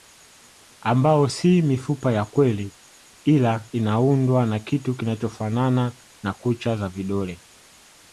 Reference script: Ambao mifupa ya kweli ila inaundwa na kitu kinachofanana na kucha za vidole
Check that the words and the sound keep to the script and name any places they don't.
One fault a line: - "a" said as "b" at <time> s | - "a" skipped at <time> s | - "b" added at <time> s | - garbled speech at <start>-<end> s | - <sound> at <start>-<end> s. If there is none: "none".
- "si" added at 1.2 s